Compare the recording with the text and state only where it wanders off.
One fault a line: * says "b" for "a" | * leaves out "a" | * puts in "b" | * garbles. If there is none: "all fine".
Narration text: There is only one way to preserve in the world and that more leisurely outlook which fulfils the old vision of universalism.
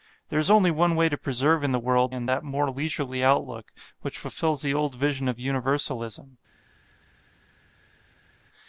all fine